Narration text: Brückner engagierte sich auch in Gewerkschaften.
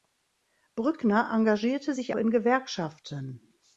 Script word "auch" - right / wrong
wrong